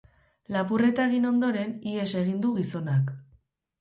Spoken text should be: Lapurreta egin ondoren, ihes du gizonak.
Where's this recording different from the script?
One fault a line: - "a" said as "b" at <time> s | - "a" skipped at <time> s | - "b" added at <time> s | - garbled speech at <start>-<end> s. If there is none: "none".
- "egin" added at 2.2 s